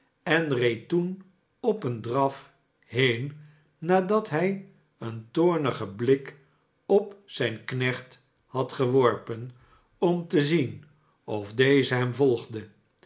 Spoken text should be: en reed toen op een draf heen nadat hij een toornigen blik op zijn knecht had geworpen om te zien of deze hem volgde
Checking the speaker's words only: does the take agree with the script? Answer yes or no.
yes